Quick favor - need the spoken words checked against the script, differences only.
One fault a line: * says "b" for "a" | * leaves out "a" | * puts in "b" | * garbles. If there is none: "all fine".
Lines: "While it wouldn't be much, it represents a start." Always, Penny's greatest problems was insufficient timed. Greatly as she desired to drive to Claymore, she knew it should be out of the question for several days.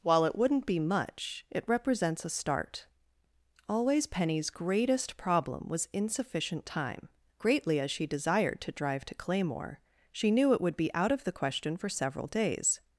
* says "problem" for "problems"
* says "time" for "timed"
* says "would" for "should"